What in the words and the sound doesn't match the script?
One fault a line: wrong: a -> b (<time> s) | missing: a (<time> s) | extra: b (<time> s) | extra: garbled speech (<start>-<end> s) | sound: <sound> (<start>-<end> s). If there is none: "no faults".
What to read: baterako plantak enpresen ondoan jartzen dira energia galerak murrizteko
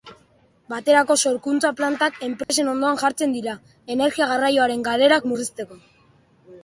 extra: sorkuntza (1.3 s)
sound: dropout (2.4-2.5 s)
extra: garraioaren (4.3 s)